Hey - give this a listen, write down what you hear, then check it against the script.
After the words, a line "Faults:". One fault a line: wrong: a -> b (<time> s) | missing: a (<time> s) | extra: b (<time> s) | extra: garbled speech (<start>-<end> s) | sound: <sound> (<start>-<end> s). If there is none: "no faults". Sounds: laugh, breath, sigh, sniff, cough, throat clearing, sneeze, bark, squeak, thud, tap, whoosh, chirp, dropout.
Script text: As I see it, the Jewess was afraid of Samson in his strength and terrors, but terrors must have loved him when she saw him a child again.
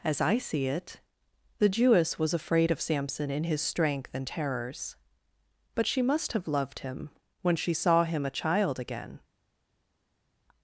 As I see it, the Jewess was afraid of Samson in his strength and terrors, but she must have loved him when she saw him a child again.
Faults:
wrong: terrors -> she (5.9 s)